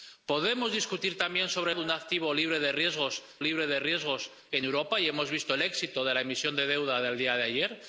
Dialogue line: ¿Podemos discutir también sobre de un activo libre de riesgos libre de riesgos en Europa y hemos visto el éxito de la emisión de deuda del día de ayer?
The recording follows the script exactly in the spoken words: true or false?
true